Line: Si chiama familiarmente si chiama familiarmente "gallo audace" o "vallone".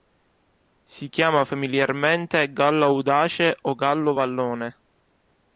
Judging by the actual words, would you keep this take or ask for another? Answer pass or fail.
fail